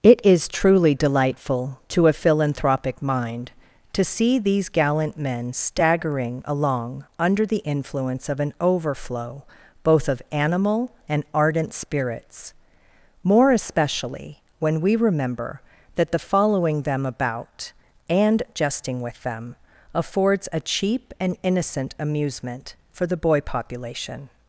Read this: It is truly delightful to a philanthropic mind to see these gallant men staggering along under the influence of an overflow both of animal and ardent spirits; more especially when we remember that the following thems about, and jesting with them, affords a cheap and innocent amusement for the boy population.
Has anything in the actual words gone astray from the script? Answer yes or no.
yes